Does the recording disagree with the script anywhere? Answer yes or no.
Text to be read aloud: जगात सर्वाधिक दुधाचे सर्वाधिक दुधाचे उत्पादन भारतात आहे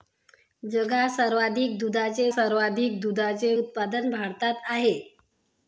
no